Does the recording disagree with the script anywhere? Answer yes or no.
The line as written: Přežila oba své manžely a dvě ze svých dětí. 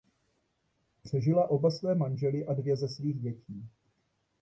no